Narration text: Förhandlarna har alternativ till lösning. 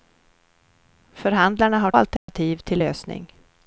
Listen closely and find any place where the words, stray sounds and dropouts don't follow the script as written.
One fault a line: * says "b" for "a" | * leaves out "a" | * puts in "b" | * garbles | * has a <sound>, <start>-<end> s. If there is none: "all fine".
* has a dropout, 2.2-2.3 s